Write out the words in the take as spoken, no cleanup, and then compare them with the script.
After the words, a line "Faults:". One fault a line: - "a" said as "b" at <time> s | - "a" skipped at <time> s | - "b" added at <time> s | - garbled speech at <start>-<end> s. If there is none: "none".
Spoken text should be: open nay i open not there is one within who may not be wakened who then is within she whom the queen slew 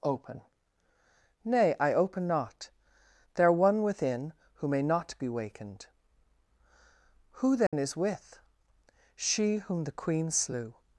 open nay i open not there one within who may not be wakened who then is with she whom the queen slew
Faults:
- "is" skipped at 3.5 s
- "within" said as "with" at 8.0 s